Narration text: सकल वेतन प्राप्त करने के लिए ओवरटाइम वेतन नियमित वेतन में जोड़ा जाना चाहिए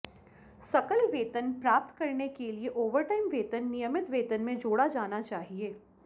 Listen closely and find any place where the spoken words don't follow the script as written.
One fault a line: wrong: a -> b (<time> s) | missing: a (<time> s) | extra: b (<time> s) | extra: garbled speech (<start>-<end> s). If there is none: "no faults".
no faults